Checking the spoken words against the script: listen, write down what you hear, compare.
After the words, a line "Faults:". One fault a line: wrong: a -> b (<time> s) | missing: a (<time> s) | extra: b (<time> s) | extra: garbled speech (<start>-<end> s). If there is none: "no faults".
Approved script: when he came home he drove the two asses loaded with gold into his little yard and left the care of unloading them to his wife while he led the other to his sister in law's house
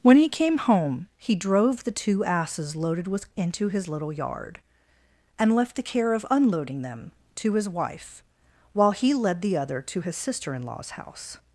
when he came home he drove the two asses loaded with into his little yard and left the care of unloading them to his wife while he led the other to his sister in law's house
Faults:
missing: gold (3.3 s)